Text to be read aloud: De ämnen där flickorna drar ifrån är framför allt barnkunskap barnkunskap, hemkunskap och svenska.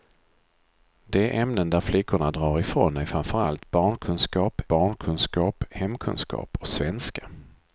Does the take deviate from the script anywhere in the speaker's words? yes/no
no